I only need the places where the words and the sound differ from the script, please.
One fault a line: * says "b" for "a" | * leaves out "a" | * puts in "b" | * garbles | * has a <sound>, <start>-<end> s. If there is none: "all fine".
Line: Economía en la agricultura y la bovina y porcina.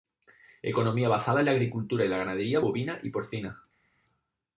* puts in "basada"
* puts in "ganadería"